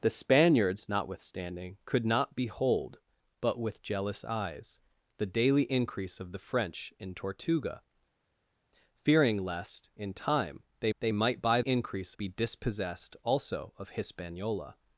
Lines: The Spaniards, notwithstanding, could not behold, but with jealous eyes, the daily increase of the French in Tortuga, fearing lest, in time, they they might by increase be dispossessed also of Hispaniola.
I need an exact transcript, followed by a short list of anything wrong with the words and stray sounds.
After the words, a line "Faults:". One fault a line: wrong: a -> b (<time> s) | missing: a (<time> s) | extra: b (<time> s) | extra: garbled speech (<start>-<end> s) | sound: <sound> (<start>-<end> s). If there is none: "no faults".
The Spaniards, notwithstanding, could not behold, but with jealous eyes, the daily increase of the French in Tortuga, fearing lest, in time, they they might by increase be dispossessed also of Hispaniola.
Faults:
no faults